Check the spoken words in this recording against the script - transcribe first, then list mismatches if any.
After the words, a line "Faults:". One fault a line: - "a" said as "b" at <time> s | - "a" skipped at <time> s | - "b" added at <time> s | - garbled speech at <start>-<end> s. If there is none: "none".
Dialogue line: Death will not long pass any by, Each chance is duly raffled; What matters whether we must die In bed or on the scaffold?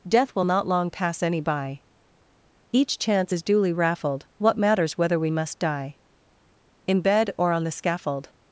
Death will not long pass any by, Each chance is duly raffled; What matters whether we must die In bed or on the scaffold?
Faults:
none